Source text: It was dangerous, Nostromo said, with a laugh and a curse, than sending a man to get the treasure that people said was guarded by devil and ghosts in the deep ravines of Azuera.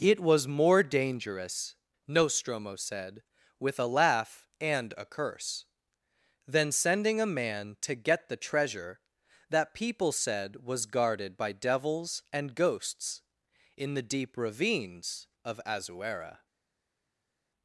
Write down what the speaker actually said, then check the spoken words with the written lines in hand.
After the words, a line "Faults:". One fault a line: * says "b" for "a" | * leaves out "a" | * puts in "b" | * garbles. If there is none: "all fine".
It was more dangerous, Nostromo said, with a laugh and a curse, than sending a man to get the treasure that people said was guarded by devils and ghosts in the deep ravines of Azuera.
Faults:
* puts in "more"
* says "devils" for "devil"